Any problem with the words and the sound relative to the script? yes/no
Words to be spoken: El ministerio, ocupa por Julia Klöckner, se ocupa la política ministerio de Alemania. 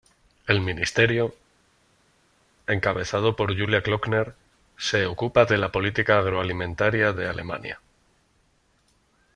yes